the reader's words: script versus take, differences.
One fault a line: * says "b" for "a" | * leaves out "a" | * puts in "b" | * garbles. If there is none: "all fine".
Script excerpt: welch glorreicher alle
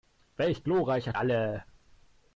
all fine